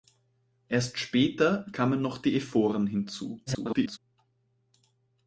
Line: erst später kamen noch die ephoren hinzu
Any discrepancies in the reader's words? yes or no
yes